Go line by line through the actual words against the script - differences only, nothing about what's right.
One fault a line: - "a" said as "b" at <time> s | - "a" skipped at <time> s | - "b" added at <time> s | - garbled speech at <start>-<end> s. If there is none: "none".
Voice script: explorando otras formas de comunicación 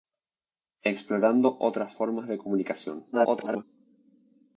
- garbled speech at 3.1-3.6 s